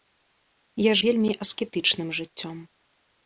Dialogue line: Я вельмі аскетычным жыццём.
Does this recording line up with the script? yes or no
yes